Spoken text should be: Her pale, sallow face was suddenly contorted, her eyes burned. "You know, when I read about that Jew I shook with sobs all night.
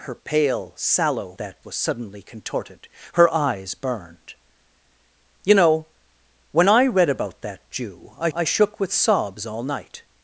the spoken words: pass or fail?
fail